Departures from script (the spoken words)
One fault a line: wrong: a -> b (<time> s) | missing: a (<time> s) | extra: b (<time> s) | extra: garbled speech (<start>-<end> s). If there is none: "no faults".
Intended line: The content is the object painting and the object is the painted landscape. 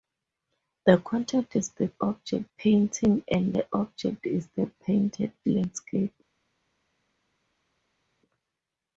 no faults